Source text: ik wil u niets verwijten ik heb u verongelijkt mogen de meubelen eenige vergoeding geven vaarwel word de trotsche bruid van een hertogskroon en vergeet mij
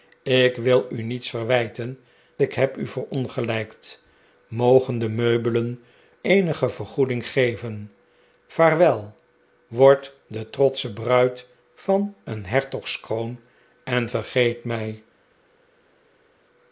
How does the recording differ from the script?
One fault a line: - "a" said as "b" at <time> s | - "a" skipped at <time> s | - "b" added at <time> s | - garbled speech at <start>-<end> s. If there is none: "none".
none